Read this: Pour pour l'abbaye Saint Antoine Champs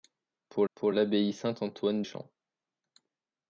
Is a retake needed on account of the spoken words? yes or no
no